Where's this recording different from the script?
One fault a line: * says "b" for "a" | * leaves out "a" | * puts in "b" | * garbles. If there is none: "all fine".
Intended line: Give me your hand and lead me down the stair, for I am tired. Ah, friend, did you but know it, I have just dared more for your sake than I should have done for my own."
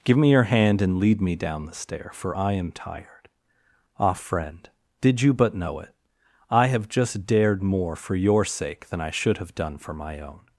all fine